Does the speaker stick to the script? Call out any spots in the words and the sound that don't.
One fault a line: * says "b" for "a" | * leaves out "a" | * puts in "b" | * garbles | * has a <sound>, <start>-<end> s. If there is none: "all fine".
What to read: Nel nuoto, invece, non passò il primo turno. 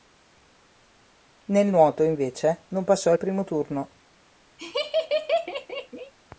* has a laugh, 4.6-6.1 s